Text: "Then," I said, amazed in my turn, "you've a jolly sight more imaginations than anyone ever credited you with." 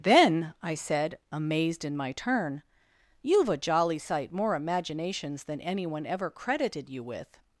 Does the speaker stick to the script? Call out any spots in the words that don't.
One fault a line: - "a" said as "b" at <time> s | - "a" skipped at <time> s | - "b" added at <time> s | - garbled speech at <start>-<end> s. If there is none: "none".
none